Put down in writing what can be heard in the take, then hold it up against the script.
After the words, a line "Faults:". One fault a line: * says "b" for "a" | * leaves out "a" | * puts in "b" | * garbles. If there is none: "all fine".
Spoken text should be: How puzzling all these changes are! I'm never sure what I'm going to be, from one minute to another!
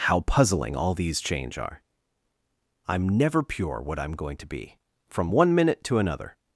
How puzzling all these change are! I'm never pure what I'm going to be, from one minute to another!
Faults:
* says "change" for "changes"
* says "pure" for "sure"